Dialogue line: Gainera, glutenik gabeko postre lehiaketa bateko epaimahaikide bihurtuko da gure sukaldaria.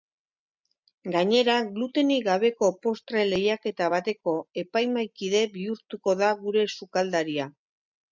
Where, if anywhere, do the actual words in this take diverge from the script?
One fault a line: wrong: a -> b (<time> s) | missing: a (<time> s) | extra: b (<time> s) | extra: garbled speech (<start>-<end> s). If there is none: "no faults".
no faults